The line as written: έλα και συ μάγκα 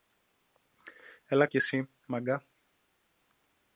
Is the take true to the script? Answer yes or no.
yes